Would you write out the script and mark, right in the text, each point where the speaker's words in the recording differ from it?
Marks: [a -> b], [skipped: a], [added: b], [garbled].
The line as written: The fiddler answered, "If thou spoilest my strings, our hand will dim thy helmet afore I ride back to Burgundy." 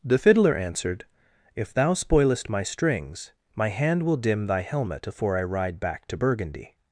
The fiddler answered, "If thou spoilest my strings, [our -> my] hand will dim thy helmet afore I ride back to Burgundy."